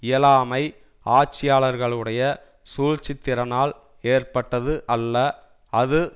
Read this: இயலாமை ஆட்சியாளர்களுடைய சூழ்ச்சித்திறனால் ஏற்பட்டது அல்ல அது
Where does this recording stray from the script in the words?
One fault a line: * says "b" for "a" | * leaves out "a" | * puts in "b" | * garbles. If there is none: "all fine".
all fine